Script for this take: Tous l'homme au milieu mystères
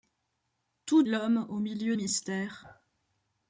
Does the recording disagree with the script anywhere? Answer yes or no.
no